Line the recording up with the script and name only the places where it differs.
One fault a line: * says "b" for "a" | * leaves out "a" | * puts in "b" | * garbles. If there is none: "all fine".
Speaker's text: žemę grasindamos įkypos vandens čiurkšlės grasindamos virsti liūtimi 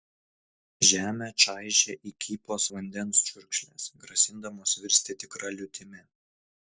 * says "čaižė" for "grasindamos"
* puts in "tikra"